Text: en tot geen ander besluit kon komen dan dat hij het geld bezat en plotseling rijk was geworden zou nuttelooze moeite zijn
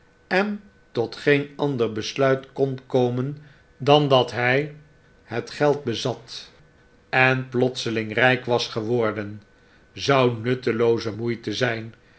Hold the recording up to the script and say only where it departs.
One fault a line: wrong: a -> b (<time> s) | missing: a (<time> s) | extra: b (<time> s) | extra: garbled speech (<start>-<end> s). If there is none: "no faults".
no faults